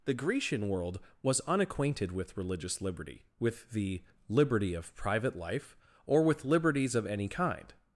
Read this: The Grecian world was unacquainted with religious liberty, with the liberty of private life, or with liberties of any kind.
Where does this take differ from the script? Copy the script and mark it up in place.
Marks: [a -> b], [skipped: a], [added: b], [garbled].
The Grecian world was unacquainted with religious liberty, with the liberty of private life, or with liberties of any kind.